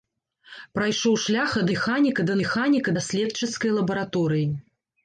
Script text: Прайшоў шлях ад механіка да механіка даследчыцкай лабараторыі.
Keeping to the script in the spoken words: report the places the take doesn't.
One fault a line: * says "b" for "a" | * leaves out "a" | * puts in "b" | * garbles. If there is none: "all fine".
all fine